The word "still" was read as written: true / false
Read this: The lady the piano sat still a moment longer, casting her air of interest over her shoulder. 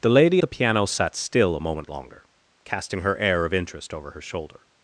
true